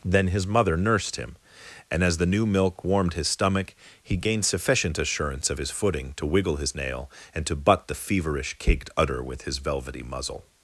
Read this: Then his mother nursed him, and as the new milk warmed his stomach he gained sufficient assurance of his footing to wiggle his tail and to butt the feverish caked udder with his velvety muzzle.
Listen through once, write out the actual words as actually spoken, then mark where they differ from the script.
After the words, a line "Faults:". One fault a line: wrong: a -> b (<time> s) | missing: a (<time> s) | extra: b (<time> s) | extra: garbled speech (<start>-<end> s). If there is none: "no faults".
Then his mother nursed him, and as the new milk warmed his stomach he gained sufficient assurance of his footing to wiggle his nail and to butt the feverish caked udder with his velvety muzzle.
Faults:
wrong: tail -> nail (6.7 s)